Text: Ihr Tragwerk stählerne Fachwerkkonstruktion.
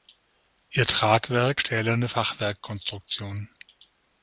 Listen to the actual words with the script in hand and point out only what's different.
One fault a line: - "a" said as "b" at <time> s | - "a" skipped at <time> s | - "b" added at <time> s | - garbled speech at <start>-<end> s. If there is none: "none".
none